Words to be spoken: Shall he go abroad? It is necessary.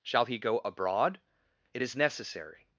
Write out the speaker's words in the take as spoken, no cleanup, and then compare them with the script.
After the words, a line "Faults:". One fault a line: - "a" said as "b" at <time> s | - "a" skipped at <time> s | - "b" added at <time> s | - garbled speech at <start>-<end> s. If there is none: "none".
Shall he go abroad? It is necessary.
Faults:
none